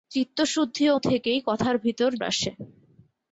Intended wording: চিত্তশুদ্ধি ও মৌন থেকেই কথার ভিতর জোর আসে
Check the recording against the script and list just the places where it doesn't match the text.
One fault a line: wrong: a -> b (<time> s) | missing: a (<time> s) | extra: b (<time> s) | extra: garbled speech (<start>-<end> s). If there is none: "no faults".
missing: মৌন (0.9 s)
missing: জোর (2.1 s)